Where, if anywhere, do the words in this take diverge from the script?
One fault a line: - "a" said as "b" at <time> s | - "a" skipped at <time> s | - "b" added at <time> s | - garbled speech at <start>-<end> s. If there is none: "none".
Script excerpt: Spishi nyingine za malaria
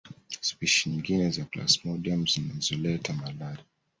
- "plasmodium zinazoleta" added at 1.4 s